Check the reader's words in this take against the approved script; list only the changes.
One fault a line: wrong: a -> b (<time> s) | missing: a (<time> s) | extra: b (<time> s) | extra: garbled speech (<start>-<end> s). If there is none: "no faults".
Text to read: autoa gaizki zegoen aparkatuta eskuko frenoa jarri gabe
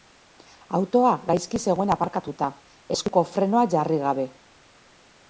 no faults